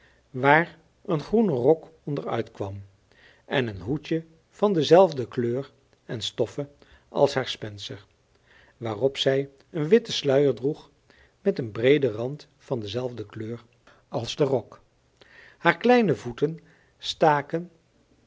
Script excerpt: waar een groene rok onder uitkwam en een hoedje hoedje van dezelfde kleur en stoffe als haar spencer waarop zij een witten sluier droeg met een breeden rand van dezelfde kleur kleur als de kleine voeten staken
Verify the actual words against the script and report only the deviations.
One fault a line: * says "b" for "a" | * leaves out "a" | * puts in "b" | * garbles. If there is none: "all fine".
* leaves out "hoedje"
* leaves out "kleur"
* puts in "rok haar"